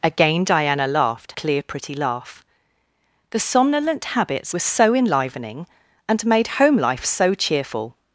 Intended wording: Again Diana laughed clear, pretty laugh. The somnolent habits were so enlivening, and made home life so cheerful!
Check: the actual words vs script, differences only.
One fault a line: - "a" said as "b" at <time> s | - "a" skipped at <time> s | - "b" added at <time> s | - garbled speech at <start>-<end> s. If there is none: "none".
none